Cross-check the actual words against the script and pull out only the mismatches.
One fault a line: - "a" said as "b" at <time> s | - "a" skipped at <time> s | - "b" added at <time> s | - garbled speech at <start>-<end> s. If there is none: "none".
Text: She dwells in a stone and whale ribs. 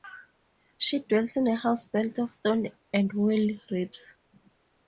- "house built of" added at 1.6 s